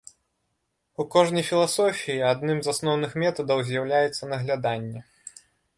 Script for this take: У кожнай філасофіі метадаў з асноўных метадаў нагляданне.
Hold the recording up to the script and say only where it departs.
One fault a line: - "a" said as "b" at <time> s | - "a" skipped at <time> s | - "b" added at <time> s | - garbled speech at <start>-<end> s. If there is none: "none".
- "метадаў" said as "адным" at 2.3 s
- "з'яўляецца" added at 3.7 s